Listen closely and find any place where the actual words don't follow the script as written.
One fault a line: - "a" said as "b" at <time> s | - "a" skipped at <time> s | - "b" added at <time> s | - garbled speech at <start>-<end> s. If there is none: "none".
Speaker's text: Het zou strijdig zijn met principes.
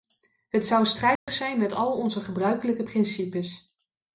- "al onze gebruikelijke" added at 1.7 s